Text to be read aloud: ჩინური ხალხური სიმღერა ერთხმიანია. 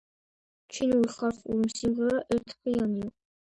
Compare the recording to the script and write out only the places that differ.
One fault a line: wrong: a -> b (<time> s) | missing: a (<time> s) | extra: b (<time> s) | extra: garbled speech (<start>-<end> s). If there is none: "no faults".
no faults